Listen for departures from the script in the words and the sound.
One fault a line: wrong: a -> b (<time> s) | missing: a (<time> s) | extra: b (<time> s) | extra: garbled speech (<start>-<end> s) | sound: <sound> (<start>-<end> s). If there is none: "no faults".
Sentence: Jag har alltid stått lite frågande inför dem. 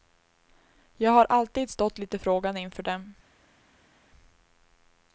no faults